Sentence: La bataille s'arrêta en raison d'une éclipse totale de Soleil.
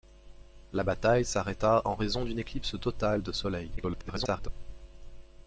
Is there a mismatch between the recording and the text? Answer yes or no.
yes